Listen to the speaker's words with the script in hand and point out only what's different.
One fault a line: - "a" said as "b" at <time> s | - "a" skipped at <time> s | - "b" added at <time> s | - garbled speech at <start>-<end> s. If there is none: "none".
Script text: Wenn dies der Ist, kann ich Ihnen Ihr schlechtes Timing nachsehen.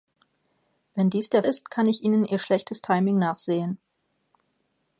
none